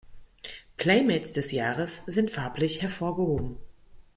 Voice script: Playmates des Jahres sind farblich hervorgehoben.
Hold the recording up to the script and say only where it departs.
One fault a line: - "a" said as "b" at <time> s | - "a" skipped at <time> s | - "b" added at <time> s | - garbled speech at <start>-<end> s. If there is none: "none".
none